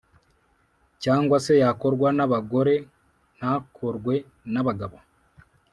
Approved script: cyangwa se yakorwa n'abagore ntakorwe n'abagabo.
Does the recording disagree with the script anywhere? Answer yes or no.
no